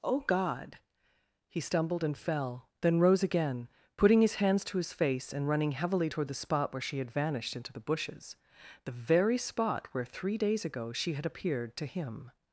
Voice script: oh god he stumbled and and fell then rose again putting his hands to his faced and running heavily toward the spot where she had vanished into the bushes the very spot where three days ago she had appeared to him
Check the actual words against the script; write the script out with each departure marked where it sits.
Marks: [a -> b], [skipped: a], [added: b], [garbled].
oh god he stumbled and [skipped: and] fell then rose again putting his hands to his [faced -> face] and running heavily toward the spot where she had vanished into the bushes the very spot where three days ago she had appeared to him